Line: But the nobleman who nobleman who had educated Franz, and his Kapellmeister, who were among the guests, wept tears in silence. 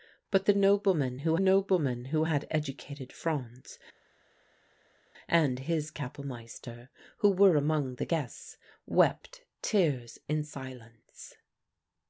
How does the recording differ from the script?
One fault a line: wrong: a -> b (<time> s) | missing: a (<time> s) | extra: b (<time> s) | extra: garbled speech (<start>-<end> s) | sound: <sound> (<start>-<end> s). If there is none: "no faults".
no faults